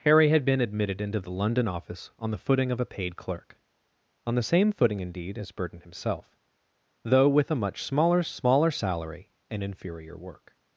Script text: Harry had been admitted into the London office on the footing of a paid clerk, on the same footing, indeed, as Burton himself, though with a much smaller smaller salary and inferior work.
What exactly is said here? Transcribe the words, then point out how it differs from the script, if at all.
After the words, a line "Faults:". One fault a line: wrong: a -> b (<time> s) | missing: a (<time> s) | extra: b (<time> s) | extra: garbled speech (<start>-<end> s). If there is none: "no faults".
Harry had been admitted into the London office on the footing of a paid clerk, on the same footing, indeed, as Burton himself, though with a much smaller smaller salary and inferior work.
Faults:
no faults